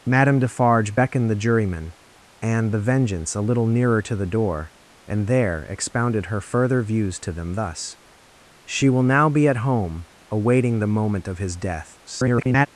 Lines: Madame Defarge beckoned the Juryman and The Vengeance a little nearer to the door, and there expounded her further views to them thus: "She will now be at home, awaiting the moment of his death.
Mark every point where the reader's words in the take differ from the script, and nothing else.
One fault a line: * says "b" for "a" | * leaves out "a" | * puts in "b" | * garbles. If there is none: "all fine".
* garbles